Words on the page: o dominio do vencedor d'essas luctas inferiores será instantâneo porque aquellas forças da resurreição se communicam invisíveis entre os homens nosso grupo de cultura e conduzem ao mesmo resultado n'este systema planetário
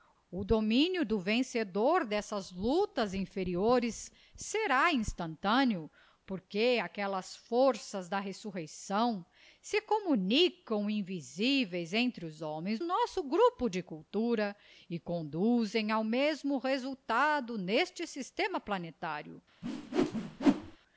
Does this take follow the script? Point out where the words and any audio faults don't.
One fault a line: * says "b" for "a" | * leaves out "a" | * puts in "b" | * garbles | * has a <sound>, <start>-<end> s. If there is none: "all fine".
* has a whoosh, 19.6-20.8 s